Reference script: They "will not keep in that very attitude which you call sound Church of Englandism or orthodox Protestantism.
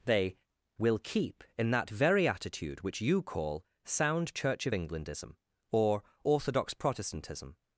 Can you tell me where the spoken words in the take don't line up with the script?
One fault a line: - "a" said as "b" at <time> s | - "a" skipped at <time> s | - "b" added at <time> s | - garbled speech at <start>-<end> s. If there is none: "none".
- "not" skipped at 1.0 s